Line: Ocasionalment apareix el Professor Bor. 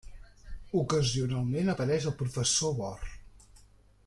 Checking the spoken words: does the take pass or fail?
pass